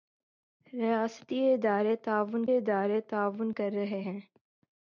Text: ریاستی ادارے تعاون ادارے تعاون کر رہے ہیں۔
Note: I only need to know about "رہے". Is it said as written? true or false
true